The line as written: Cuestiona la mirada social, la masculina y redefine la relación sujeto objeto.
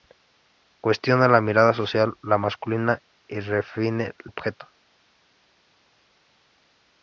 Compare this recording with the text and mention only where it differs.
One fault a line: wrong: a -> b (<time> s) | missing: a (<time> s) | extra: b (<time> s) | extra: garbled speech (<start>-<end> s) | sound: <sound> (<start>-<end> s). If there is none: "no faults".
missing: la relación sujeto (4.1 s)